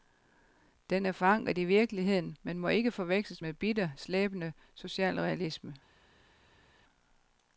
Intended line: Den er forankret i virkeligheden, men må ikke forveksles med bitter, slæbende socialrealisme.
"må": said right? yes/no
yes